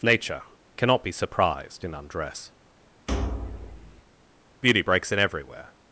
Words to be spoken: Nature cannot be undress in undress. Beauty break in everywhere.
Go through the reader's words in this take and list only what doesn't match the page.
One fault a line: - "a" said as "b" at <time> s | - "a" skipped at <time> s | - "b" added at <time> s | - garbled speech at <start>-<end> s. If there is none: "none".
- "undress" said as "surprised" at 1.1 s
- "break" said as "breaks" at 4.8 s